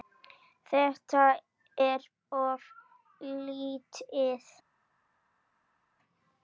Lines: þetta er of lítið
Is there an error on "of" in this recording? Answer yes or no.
no